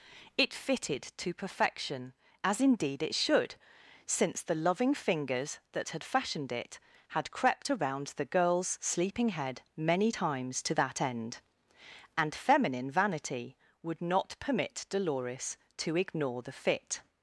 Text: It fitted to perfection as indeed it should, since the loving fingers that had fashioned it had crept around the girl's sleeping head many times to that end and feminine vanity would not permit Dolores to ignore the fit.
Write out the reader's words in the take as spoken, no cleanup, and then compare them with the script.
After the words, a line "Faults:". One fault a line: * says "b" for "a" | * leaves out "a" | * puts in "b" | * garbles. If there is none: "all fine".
It fitted to perfection as indeed it should, since the loving fingers that had fashioned it had crept around the girl's sleeping head many times to that end and feminine vanity would not permit Dolores to ignore the fit.
Faults:
all fine